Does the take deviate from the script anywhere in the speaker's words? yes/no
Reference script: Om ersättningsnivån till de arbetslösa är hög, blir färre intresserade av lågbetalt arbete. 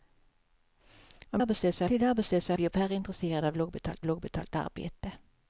yes